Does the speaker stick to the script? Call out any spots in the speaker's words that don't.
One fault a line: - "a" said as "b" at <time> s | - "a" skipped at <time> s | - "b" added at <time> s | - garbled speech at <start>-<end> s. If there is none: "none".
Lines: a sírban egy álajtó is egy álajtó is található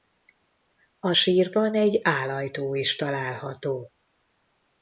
- "egy álajtó is" skipped at 3.0 s